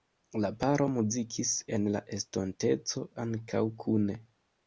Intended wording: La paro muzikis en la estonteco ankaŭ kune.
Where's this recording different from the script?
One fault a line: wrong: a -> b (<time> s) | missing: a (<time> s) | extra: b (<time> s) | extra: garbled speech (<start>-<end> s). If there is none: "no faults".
no faults